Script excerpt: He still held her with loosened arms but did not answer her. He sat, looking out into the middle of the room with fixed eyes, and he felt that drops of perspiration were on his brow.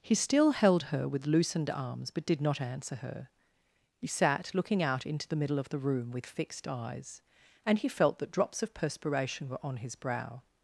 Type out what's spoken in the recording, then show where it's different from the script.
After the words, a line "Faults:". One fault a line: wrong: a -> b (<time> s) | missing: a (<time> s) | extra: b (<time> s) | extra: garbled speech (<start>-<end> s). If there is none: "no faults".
He still held her with loosened arms but did not answer her. He sat, looking out into the middle of the room with fixed eyes, and he felt that drops of perspiration were on his brow.
Faults:
no faults